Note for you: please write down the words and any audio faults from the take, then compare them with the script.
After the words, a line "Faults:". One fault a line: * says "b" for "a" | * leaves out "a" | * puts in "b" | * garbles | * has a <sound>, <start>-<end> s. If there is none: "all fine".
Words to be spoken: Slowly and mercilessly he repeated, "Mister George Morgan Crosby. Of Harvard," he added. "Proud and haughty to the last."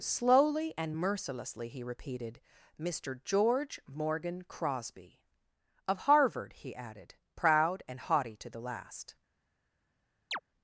Slowly and mercilessly he repeated, "Mister George Morgan Crosby. Of Harvard," he added. "Proud and haughty to the last."
Faults:
* has a chirp, 10.3-10.4 s